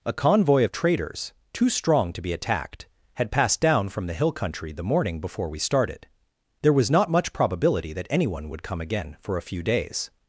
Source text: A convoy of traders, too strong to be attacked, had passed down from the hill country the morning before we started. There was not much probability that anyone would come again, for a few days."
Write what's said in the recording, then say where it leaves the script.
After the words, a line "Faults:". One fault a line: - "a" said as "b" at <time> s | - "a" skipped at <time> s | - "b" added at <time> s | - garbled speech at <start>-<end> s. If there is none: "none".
A convoy of traders, too strong to be attacked, had passed down from the hill country the morning before we started. There was not much probability that anyone would come again, for a few days."
Faults:
none